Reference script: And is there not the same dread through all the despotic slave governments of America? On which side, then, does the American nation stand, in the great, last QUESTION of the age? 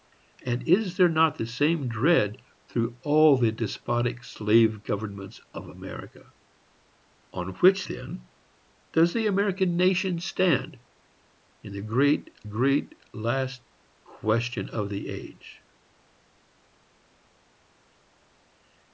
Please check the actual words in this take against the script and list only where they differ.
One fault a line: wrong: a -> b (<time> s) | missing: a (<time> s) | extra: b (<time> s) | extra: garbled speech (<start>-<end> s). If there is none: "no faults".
missing: side (7.8 s)
extra: great (12.4 s)